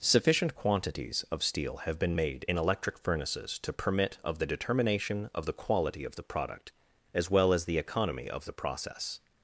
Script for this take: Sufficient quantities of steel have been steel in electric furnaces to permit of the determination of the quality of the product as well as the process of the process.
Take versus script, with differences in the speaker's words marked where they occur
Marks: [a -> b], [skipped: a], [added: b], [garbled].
Sufficient quantities of steel have been [steel -> made] in electric furnaces to permit of the determination of the quality of the product as well as the [process -> economy] of the process.